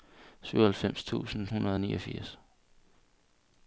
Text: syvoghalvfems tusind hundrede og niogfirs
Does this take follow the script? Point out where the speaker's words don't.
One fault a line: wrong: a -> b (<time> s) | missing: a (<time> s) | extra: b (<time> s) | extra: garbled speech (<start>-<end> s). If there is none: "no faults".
no faults